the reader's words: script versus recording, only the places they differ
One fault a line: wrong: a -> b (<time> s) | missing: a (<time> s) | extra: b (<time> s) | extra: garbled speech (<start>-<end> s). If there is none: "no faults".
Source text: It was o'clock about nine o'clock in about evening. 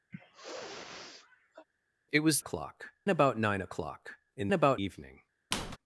no faults